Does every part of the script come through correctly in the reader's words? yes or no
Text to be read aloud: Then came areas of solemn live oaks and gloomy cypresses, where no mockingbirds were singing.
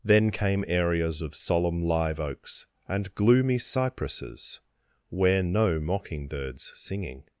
no